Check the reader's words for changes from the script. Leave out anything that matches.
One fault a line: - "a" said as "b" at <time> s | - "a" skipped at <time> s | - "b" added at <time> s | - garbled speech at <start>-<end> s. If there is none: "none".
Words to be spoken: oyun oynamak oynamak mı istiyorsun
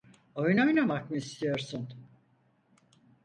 - "oynamak" skipped at 1.1 s